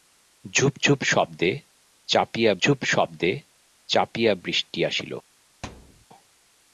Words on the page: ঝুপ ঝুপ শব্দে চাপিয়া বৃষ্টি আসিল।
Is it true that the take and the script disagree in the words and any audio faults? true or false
true